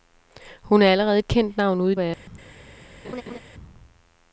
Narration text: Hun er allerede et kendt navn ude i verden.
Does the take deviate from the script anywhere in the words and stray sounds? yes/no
yes